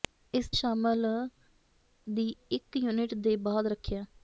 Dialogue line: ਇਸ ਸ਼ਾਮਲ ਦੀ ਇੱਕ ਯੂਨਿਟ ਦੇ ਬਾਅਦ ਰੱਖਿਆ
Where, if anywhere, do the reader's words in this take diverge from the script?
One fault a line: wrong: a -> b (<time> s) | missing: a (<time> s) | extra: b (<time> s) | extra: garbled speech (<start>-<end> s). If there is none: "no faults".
no faults